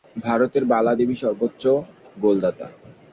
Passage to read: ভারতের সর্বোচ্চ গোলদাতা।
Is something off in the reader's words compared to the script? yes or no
yes